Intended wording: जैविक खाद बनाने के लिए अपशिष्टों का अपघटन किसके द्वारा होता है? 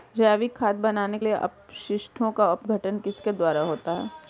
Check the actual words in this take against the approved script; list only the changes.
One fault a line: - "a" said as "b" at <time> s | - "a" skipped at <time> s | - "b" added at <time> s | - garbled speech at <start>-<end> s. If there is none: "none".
- "के" skipped at 1.2 s